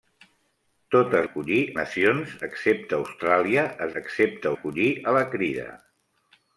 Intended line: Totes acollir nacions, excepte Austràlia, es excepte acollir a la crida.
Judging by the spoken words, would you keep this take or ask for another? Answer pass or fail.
pass